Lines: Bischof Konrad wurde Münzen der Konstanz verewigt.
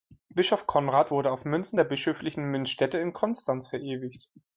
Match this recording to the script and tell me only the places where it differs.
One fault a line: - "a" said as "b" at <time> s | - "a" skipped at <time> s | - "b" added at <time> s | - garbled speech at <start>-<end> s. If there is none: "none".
- "auf" added at 1.3 s
- "bischöflichen Münzstätte in" added at 1.8 s